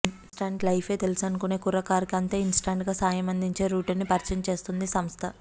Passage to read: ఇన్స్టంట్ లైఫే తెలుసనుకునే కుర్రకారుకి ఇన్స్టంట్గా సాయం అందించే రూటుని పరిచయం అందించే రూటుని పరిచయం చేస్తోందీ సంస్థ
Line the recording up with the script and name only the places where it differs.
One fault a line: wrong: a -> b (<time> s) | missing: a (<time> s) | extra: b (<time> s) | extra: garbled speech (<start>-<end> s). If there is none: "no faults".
extra: అంతే (2.1 s)
missing: అందించే రూటుని పరిచయం (4.4 s)